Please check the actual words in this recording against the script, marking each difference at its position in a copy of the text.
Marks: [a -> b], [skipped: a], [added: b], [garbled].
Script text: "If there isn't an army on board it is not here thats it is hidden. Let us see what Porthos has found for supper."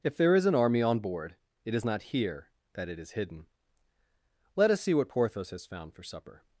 "If there [isn't -> is] an army on board it is not here [thats -> that] it is hidden. Let us see what Porthos has found for supper."